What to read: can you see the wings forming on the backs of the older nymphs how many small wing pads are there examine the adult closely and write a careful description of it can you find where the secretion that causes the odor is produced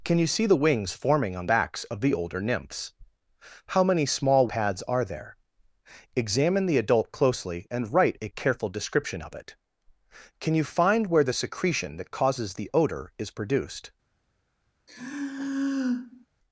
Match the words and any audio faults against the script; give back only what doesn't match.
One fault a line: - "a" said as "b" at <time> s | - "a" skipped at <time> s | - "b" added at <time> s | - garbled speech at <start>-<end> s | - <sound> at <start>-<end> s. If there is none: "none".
- "the" skipped at 1.4 s
- "wing" skipped at 4.5 s
- sigh at 14.9-16.3 s